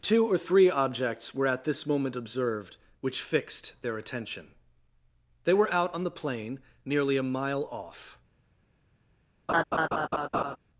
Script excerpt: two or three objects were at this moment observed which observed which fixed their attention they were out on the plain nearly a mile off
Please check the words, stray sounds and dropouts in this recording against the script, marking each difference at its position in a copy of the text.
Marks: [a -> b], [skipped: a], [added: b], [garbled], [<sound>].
two or three objects were at this moment observed which [skipped: observed which] fixed their attention they were out on the plain nearly a mile off [laugh]